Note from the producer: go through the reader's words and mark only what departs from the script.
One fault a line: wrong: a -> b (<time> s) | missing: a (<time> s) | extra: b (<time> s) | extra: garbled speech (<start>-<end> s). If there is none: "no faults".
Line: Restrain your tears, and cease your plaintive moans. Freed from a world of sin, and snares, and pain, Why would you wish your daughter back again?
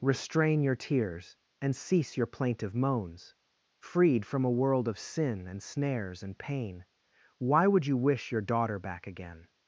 no faults